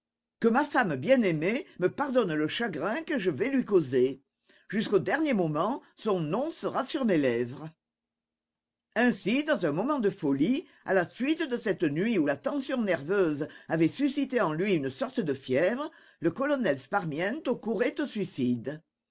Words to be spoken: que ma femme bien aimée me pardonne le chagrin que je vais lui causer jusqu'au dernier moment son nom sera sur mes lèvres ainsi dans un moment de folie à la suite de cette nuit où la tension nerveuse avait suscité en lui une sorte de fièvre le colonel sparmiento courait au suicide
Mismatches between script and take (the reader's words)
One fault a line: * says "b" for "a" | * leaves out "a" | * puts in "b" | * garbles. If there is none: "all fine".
all fine